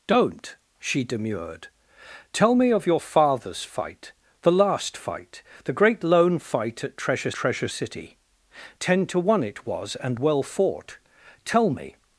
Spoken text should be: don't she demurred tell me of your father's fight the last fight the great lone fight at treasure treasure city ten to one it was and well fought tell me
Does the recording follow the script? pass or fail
pass